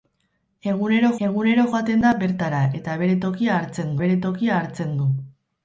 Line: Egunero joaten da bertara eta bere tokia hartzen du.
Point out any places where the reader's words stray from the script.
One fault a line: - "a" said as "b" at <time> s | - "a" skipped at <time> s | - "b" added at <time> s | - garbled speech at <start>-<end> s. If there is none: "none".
- "egunero" added at 1.3 s
- "bere tokia hartzen" added at 4.0 s